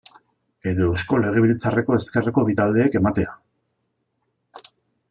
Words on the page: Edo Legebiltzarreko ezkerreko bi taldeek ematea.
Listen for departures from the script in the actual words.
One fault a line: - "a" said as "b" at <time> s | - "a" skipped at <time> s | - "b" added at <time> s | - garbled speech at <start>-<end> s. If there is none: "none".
- "Eusko" added at 0.9 s